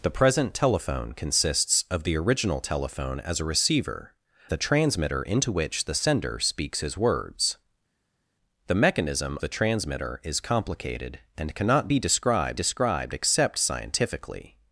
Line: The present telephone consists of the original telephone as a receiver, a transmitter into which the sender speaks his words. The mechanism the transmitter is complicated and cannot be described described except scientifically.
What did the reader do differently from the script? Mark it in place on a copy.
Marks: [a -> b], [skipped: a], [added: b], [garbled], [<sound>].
The present telephone consists of the original telephone as a receiver, a transmitter into which the sender speaks his words. The mechanism the transmitter is complicated and cannot be described described except scientifically.